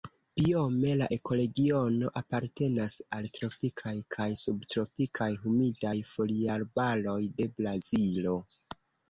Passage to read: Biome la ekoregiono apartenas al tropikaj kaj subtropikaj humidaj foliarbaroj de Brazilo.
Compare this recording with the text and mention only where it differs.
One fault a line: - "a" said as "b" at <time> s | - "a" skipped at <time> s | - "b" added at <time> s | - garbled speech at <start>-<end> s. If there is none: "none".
none